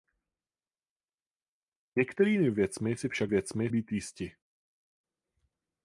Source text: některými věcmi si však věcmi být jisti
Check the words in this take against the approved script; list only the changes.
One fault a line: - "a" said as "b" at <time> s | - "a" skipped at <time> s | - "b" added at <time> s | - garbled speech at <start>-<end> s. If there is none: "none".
none